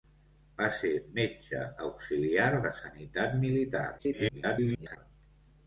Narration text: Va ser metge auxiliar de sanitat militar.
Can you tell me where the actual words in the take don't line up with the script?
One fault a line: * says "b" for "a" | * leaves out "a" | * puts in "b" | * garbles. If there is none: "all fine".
* garbles